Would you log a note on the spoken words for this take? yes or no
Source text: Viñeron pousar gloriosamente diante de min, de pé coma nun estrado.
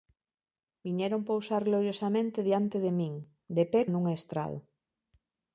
yes